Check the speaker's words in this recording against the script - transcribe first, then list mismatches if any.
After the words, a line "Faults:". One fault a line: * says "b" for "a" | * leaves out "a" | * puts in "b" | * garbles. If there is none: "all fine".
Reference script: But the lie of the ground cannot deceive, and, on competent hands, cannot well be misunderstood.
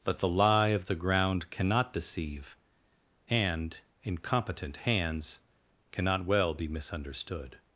But the lie of the ground cannot deceive, and, in competent hands, cannot well be misunderstood.
Faults:
* says "in" for "on"